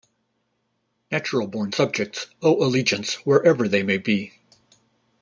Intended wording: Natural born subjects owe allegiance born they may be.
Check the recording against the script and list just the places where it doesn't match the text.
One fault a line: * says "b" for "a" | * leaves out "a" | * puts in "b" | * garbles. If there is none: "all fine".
* says "wherever" for "born"